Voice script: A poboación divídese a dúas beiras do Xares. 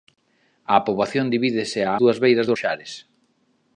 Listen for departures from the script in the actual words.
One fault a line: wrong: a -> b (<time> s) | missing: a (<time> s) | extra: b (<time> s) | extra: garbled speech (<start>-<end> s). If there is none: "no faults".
no faults